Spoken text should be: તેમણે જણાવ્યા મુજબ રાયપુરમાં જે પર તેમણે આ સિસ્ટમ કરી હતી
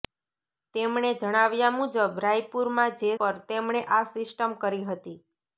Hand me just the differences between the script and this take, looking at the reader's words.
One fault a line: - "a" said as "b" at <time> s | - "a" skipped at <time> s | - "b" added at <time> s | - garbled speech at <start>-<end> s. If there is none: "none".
none